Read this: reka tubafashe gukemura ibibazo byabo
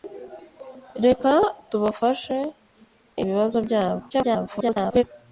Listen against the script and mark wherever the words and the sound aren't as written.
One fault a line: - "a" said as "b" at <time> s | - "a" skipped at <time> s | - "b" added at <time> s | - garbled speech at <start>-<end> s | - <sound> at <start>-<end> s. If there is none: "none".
- "gukemura" skipped at 2.4 s
- garbled speech at 4.1-5.0 s